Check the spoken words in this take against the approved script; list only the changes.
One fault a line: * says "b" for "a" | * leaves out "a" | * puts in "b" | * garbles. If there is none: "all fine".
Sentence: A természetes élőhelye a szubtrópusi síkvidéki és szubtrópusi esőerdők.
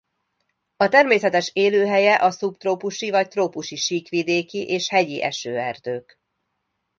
* puts in "vagy trópusi"
* says "hegyi" for "szubtrópusi"